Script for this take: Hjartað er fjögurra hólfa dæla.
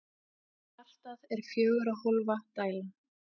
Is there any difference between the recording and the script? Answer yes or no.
no